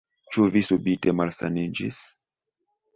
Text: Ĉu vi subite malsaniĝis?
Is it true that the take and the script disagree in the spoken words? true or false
false